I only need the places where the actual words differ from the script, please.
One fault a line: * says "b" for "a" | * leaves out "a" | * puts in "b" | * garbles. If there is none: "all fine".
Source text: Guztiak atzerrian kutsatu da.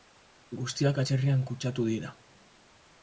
* says "dira" for "da"